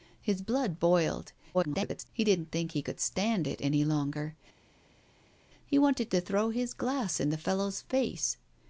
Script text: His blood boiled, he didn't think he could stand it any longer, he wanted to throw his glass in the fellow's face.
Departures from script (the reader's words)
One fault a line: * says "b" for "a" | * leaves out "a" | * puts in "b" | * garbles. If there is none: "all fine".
* garbles